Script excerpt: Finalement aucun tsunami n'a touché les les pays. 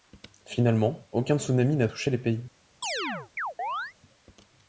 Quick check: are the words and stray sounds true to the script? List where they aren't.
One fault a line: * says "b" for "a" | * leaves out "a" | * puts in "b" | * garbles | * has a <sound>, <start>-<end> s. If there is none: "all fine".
* leaves out "les"
* has a chirp, 2.8-3.9 s